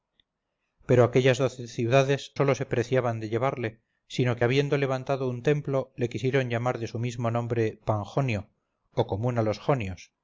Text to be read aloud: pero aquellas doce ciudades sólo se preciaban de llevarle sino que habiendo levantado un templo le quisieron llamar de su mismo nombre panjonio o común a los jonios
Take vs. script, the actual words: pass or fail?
pass